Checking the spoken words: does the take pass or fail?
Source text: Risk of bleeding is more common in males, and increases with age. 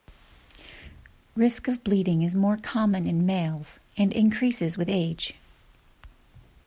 pass